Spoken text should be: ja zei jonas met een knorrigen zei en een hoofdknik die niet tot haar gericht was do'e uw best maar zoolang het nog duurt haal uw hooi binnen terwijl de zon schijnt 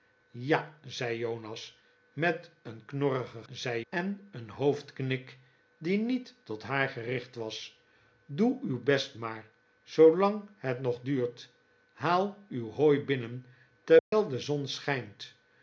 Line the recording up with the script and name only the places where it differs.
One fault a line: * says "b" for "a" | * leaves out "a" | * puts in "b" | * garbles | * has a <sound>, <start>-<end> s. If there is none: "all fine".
* has a dropout, 14.0-14.1 s